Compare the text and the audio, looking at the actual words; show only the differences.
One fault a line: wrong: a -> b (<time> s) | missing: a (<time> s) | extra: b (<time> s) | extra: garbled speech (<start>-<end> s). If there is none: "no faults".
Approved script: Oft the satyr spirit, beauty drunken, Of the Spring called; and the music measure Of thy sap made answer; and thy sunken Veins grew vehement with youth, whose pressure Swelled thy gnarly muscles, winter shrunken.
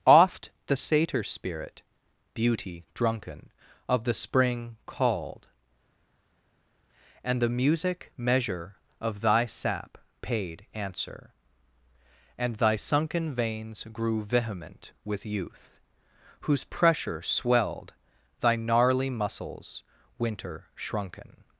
wrong: made -> paid (10.2 s)